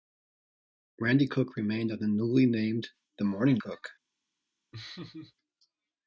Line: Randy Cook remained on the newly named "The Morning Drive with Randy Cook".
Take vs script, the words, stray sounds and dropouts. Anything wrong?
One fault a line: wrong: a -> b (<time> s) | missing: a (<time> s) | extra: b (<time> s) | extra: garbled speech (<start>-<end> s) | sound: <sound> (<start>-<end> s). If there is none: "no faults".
missing: Drive with Randy (3.6 s)
sound: laugh (4.7-5.3 s)